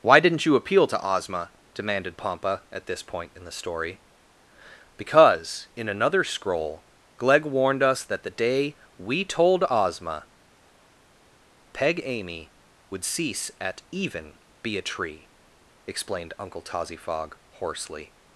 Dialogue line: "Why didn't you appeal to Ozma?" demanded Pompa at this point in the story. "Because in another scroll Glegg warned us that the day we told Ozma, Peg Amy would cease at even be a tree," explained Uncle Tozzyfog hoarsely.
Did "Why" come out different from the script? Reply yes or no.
no